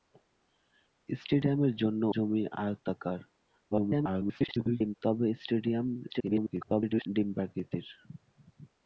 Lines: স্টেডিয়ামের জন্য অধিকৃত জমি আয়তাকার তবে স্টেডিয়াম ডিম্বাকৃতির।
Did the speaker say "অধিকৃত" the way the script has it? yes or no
no